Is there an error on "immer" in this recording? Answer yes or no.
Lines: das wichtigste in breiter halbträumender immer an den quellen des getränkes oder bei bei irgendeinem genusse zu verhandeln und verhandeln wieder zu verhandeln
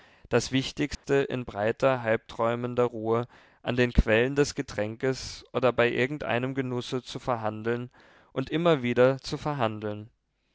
yes